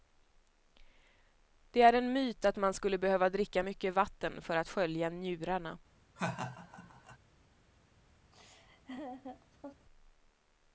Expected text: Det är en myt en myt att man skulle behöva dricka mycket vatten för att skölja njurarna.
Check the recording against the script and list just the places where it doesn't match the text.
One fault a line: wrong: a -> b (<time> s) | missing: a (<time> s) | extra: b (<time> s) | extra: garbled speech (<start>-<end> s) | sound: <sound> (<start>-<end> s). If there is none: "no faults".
missing: en myt (2.5 s)
sound: laugh (6.2-7.2 s)
sound: laugh (8.3-9.9 s)